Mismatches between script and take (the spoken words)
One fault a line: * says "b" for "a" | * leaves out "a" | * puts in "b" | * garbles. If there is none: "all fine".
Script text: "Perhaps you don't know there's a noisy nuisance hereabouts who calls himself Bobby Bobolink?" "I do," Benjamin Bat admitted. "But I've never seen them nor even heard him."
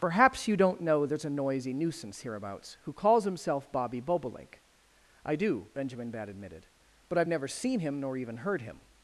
* says "him" for "them"